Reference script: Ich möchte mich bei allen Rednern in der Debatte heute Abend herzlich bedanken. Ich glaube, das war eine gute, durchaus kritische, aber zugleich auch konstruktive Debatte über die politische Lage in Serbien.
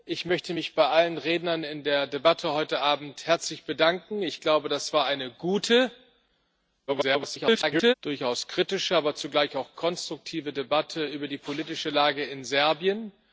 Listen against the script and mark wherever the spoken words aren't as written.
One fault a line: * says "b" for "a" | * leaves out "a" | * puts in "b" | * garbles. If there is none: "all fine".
* garbles